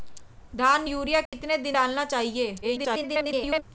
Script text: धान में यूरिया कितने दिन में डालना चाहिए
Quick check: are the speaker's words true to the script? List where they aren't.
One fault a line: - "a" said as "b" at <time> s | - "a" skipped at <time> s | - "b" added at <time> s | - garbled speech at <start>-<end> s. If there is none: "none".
- "में" skipped at 0.8 s
- "में" skipped at 1.7 s
- garbled speech at 2.6-3.6 s